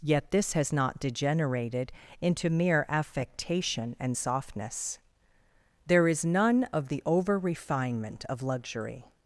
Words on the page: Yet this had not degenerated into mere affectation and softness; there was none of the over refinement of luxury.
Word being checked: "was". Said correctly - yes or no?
no